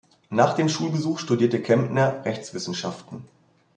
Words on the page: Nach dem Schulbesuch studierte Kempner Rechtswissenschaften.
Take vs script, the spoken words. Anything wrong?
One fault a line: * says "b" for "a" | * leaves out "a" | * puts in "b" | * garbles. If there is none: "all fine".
all fine